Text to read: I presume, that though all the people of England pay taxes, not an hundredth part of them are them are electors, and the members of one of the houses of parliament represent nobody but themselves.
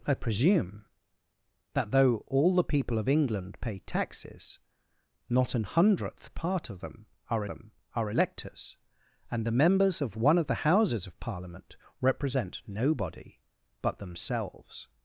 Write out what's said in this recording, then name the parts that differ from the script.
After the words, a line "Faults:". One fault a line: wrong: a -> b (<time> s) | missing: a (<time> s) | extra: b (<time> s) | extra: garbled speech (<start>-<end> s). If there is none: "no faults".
I presume, that though all the people of England pay taxes, not an hundredth part of them are them are electors, and the members of one of the houses of parliament represent nobody but themselves.
Faults:
no faults